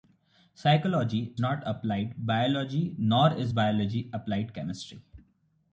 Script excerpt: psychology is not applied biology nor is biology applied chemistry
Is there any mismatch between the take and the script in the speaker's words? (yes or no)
yes